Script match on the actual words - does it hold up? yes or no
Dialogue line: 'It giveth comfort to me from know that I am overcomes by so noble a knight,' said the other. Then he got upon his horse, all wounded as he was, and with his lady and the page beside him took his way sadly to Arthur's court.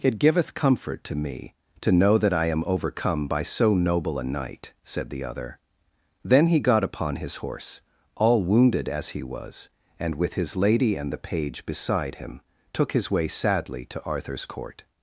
no